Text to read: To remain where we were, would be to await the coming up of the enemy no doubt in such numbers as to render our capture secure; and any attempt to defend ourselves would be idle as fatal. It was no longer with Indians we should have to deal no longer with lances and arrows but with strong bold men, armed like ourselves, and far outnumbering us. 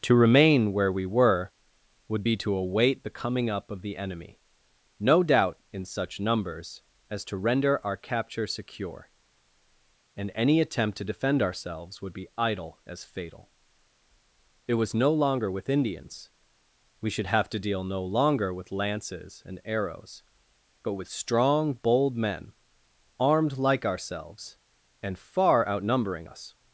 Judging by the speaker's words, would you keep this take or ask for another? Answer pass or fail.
pass